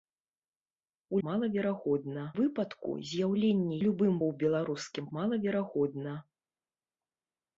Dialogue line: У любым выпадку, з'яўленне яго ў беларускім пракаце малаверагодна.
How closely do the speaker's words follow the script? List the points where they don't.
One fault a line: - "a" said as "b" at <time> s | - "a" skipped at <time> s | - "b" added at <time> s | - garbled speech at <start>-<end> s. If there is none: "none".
- "любым" said as "малаверагодна" at 1.3 s
- "яго" said as "любым" at 3.8 s
- "пракаце" skipped at 5.1 s